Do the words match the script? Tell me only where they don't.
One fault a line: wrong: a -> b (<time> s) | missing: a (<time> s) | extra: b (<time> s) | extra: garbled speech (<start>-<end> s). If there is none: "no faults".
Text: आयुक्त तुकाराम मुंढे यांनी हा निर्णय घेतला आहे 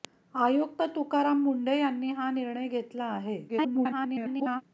extra: garbled speech (3.5-4.6 s)